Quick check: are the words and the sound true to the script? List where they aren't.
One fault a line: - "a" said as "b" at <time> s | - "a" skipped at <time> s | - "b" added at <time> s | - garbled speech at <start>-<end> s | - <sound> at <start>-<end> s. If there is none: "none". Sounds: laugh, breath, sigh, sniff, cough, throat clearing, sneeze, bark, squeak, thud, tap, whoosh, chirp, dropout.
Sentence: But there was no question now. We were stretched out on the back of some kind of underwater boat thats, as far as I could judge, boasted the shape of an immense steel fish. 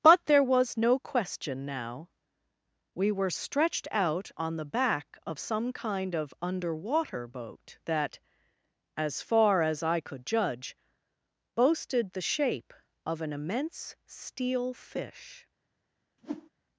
- "thats" said as "that" at 7.9 s
- whoosh at 16.2-16.5 s